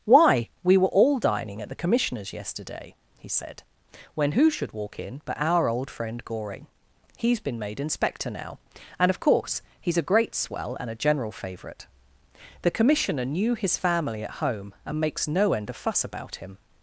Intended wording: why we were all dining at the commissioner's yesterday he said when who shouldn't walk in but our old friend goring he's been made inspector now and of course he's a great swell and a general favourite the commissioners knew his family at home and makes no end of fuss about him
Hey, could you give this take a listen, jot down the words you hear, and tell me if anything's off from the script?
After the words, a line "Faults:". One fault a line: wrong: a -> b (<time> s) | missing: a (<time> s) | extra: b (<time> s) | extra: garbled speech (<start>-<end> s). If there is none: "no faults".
why we were all dining at the commissioner's yesterday he said when who should walk in but our old friend goring he's been made inspector now and of course he's a great swell and a general favourite the commissioner knew his family at home and makes no end of fuss about him
Faults:
wrong: shouldn't -> should (4.5 s)
wrong: commissioners -> commissioner (12.7 s)